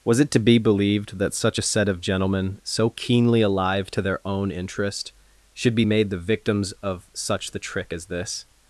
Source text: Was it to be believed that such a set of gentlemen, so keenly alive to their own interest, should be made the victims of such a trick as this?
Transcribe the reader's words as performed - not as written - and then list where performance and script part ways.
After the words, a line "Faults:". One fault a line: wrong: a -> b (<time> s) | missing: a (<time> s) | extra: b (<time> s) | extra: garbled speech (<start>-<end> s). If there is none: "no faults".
Was it to be believed that such a set of gentlemen, so keenly alive to their own interest, should be made the victims of such the trick as this?
Faults:
wrong: a -> the (7.5 s)